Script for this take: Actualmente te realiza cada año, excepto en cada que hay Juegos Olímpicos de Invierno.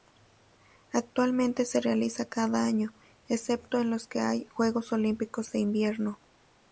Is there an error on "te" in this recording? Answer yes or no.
yes